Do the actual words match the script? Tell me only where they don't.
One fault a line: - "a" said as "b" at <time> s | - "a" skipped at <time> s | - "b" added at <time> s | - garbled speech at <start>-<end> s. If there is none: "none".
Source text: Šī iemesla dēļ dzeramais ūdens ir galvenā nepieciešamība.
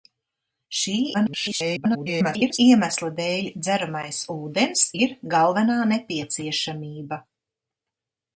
- garbled speech at 1.1-2.6 s